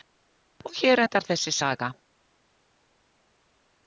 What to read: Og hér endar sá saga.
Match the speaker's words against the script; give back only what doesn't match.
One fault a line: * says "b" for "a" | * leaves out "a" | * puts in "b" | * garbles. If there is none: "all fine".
* says "þessi" for "sá"